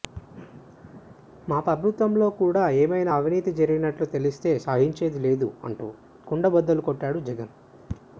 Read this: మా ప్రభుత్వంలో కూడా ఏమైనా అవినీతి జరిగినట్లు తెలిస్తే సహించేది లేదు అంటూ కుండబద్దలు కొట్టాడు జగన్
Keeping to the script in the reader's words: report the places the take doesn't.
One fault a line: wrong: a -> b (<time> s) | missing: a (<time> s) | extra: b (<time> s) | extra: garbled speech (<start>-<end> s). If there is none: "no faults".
no faults